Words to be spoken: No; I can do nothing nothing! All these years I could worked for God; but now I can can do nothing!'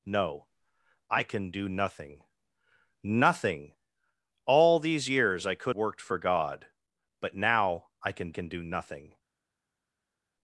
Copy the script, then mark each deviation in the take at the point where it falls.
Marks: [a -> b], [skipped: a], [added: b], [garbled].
No; I can do nothing nothing! All these years I could worked for God; but now I can can do nothing!'